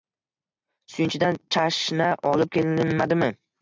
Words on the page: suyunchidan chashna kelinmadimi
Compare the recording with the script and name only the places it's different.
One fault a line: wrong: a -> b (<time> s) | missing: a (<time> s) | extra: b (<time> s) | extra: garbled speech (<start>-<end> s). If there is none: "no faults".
extra: olib (2.3 s)